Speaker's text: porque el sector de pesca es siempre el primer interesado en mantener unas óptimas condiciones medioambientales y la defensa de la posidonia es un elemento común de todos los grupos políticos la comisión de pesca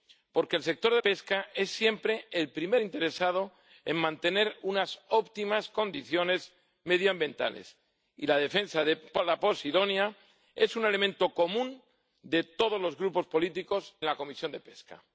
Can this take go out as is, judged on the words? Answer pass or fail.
pass